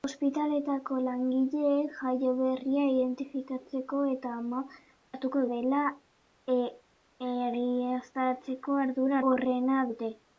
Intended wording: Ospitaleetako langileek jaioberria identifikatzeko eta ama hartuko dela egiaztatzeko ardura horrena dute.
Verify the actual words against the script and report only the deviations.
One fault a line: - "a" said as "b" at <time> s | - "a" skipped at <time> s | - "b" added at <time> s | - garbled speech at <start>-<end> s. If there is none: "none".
none